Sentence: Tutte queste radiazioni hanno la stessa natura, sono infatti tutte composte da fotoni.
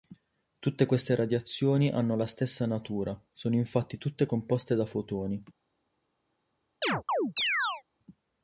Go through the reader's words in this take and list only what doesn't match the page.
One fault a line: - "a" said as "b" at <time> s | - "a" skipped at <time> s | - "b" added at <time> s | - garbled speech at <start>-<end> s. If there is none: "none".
none